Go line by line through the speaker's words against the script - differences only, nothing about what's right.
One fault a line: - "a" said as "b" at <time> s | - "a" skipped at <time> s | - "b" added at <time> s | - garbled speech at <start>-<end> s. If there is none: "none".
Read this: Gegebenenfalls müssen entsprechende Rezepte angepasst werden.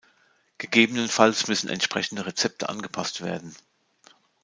none